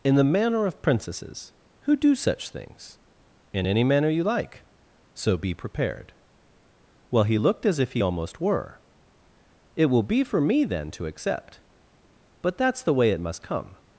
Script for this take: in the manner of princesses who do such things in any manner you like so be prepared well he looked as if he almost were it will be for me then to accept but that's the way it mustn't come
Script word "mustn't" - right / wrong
wrong